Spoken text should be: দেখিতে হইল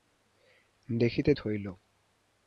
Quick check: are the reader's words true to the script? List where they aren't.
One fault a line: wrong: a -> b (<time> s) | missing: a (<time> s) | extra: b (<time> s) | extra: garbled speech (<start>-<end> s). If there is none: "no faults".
no faults